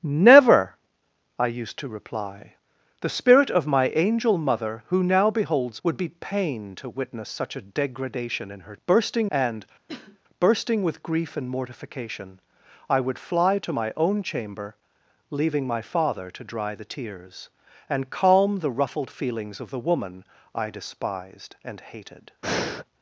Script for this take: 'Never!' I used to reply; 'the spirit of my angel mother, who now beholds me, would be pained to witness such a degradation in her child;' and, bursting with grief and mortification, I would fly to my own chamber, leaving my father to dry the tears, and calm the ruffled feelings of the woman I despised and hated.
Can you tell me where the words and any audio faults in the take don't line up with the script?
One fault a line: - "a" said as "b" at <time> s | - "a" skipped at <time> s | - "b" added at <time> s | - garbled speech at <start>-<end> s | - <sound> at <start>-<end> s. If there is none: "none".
- "me" skipped at 5.8 s
- "child" said as "bursting" at 8.8 s
- cough at 9.9-10.2 s
- breath at 22.4-22.8 s